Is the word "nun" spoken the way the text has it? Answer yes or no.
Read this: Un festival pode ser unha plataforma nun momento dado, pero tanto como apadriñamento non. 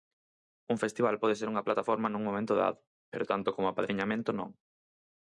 yes